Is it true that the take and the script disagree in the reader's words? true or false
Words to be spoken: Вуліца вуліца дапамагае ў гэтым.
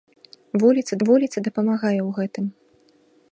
false